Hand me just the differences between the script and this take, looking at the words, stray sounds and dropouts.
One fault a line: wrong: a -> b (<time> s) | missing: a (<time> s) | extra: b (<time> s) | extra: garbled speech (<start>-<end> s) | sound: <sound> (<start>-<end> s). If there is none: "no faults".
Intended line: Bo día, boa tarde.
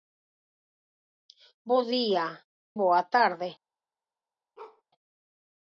sound: bark (4.6-4.8 s)